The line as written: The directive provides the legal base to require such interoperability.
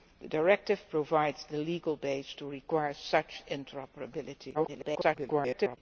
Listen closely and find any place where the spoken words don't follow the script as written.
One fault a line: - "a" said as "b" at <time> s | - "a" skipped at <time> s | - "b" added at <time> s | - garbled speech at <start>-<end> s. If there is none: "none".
- garbled speech at 4.5-5.8 s